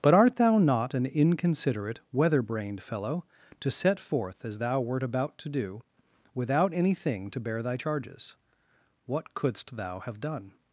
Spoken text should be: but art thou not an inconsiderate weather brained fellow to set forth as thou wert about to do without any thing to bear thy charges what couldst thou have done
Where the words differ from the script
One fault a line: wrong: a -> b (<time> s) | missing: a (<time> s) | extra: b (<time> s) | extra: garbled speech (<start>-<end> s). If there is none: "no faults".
no faults